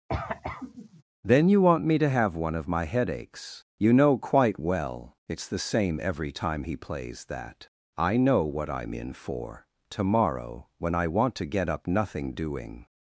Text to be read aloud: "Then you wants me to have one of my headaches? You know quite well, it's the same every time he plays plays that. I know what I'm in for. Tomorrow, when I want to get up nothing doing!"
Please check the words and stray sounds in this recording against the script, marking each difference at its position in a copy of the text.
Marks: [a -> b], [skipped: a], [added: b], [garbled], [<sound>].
[cough] "Then you [wants -> want] me to have one of my headaches? You know quite well, it's the same every time he plays [skipped: plays] that. I know what I'm in for. Tomorrow, when I want to get up nothing doing!"